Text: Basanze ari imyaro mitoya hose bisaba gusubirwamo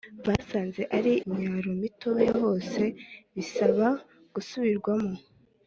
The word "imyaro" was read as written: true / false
true